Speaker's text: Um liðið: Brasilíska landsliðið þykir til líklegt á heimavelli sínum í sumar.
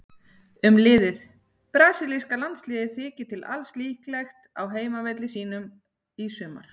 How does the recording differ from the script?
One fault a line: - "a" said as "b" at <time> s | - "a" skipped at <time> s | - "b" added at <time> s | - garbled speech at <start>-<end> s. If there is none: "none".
- "alls" added at 3.6 s